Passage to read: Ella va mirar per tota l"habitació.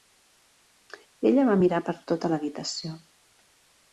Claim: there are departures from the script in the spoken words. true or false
false